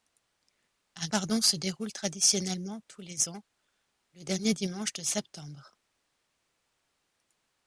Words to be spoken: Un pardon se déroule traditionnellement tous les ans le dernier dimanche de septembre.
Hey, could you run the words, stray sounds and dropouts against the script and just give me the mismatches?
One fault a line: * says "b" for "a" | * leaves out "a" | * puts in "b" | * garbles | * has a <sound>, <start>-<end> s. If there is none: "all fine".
all fine